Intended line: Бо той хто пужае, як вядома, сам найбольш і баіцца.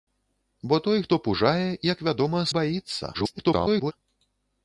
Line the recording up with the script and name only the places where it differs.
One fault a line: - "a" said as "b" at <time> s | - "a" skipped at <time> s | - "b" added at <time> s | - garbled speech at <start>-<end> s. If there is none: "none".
- "сам найбольш" skipped at 2.4 s
- garbled speech at 3.1-3.9 s